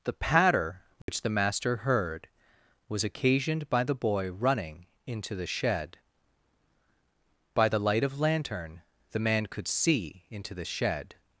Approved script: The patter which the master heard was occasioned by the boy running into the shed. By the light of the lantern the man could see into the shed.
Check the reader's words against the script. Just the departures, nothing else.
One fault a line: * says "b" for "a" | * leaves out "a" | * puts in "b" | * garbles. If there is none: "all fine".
* leaves out "the"